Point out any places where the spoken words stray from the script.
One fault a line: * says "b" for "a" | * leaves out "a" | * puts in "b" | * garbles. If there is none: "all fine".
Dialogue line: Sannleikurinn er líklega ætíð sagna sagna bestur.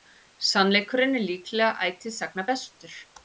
* leaves out "sagna"